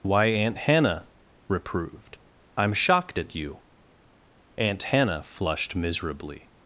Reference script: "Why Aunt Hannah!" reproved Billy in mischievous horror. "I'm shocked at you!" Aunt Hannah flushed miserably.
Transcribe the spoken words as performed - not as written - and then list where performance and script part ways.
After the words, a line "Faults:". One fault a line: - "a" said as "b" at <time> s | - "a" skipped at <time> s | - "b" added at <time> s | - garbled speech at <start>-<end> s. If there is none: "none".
"Why Aunt Hannah!" reproved. "I'm shocked at you!" Aunt Hannah flushed miserably.
Faults:
- "Billy in mischievous horror" skipped at 2.2 s